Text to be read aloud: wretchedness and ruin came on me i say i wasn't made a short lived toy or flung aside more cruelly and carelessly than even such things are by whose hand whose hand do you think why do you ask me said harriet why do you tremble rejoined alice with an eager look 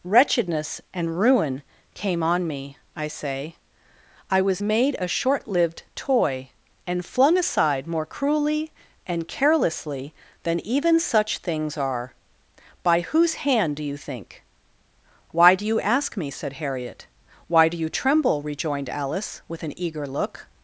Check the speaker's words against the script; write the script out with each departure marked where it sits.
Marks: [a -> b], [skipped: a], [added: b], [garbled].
wretchedness and ruin came on me i say i [wasn't -> was] made a short lived toy [or -> and] flung aside more cruelly and carelessly than even such things are by whose hand [skipped: whose hand] do you think why do you ask me said harriet why do you tremble rejoined alice with an eager look